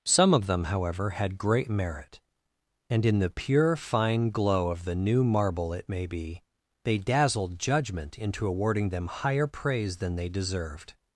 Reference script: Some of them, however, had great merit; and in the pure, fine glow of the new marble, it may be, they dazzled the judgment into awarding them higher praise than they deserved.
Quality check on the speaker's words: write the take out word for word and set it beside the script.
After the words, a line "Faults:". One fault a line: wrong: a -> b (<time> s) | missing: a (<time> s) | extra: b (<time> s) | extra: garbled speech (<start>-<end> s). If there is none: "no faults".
Some of them, however, had great merit; and in the pure, fine glow of the new marble, it may be, they dazzled judgment into awarding them higher praise than they deserved.
Faults:
missing: the (7.6 s)